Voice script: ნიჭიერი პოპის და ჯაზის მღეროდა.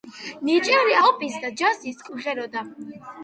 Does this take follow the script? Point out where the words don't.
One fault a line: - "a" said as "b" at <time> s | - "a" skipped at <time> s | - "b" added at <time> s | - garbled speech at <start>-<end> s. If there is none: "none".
none